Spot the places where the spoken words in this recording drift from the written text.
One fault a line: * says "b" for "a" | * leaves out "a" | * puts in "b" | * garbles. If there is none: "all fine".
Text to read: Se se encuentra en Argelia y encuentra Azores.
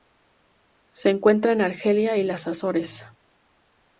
* leaves out "se"
* says "las" for "encuentra"